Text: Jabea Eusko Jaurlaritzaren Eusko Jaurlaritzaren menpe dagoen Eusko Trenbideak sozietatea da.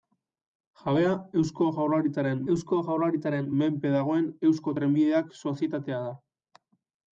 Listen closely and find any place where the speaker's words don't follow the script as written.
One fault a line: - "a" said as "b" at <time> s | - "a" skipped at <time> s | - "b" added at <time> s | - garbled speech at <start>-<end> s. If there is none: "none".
none